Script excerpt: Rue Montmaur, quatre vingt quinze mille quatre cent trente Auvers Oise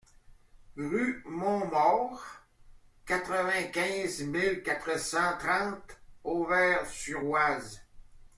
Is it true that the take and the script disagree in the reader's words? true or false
true